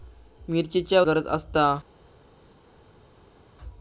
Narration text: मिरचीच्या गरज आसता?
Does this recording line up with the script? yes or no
yes